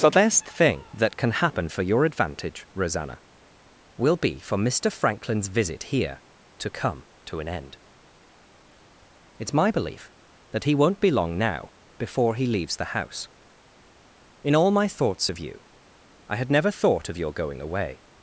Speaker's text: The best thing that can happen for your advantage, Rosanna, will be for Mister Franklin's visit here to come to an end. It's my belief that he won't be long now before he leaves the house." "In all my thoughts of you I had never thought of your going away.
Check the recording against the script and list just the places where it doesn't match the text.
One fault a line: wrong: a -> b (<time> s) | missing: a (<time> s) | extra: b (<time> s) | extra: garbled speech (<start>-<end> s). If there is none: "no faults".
no faults